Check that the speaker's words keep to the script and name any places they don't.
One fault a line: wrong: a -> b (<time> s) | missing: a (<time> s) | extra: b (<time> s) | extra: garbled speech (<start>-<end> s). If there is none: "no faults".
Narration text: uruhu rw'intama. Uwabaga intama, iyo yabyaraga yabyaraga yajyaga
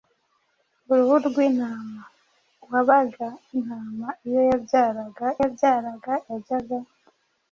no faults